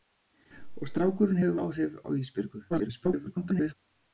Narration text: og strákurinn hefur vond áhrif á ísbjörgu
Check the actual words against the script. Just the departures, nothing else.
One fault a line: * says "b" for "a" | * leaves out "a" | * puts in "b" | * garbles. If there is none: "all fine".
* leaves out "vond"
* garbles